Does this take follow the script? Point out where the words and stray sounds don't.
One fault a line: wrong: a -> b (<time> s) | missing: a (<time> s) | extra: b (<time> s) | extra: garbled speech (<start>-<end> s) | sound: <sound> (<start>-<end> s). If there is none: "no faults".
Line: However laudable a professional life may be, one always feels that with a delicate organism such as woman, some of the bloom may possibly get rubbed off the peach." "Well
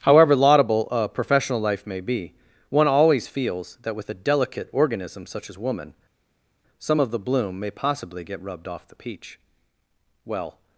no faults